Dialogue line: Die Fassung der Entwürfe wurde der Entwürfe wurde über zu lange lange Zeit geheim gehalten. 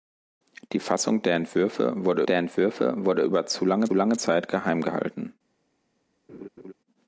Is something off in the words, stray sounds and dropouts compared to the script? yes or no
yes